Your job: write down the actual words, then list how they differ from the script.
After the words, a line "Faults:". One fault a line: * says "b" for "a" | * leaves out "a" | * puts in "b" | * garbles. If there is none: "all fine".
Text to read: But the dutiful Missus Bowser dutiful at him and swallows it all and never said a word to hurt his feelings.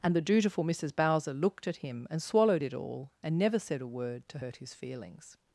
And the dutiful Missus Bowser looked at him and swallowed it all and never said a word to hurt his feelings.
Faults:
* says "And" for "But"
* says "looked" for "dutiful"
* says "swallowed" for "swallows"